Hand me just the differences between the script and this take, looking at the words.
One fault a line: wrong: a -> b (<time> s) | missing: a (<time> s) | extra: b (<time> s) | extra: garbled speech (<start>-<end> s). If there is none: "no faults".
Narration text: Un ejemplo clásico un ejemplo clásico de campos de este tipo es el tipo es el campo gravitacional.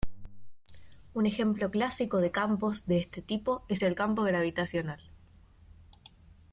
missing: un ejemplo clásico (2.2 s)
missing: tipo es el (4.0 s)